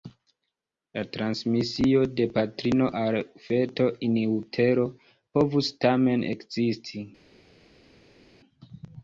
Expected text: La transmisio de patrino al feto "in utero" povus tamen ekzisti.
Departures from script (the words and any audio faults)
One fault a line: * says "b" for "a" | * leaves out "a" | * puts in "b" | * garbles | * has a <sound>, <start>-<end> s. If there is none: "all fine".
all fine